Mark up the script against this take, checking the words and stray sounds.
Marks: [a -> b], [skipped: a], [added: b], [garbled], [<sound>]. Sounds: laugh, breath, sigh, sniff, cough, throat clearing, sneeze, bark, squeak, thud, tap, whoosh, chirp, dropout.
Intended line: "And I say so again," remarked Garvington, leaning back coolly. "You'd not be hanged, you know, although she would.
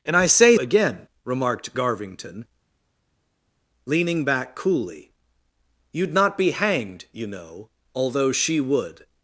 "And I say [skipped: so] again," remarked Garvington, leaning back coolly. "You'd not be hanged, you know, although she would.